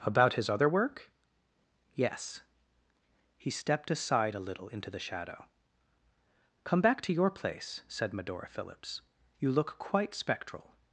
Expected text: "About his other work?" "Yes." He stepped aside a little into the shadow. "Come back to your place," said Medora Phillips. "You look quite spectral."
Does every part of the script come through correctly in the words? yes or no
yes